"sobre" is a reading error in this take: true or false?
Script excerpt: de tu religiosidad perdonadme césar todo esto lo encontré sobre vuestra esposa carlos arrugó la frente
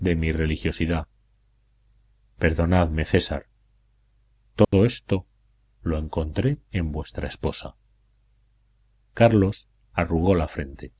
true